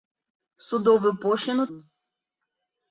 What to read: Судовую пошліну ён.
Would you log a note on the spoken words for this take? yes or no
no